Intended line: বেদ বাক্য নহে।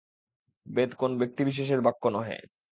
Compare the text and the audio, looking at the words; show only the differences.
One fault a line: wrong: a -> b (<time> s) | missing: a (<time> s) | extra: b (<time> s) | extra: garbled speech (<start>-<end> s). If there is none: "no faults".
extra: কোন ব্যক্তিবিশেষের (0.9 s)